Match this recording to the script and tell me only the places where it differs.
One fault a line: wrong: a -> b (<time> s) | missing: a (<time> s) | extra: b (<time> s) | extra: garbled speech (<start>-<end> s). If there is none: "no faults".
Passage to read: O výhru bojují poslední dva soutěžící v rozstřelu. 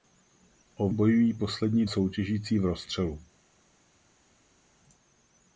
missing: výhru (0.9 s)
missing: dva (1.9 s)